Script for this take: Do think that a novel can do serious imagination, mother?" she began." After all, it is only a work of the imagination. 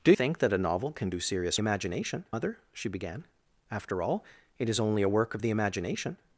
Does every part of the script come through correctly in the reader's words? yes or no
yes